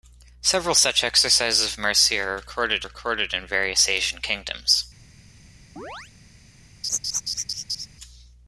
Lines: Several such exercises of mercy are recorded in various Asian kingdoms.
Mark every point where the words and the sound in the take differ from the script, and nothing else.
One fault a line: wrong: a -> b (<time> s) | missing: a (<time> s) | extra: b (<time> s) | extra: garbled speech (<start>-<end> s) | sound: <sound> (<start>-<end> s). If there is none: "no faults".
extra: recorded (2.8 s)
sound: chirp (5.8-6.1 s)
sound: laugh (6.8-7.9 s)